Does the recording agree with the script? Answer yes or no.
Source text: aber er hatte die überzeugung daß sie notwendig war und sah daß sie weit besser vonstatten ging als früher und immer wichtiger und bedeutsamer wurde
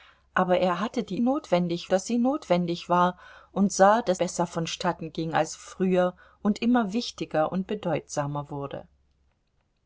no